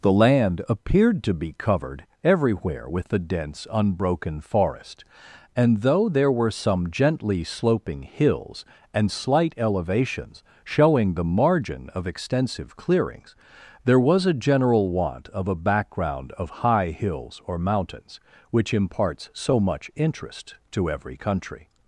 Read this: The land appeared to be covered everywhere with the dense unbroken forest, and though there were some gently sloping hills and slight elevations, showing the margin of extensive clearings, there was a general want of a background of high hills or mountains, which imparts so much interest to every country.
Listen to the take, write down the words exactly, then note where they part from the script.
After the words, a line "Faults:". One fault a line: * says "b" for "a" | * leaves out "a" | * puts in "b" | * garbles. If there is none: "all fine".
The land appeared to be covered everywhere with the dense unbroken forest, and though there were some gently sloping hills and slight elevations, showing the margin of extensive clearings, there was a general want of a background of high hills or mountains, which imparts so much interest to every country.
Faults:
all fine